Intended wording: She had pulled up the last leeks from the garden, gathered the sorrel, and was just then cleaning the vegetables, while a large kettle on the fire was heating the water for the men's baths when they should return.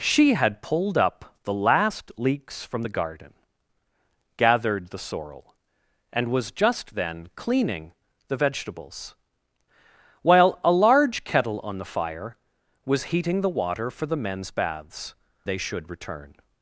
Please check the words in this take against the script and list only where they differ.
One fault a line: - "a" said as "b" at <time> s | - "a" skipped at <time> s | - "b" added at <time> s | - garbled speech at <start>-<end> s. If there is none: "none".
- "when" skipped at 15.1 s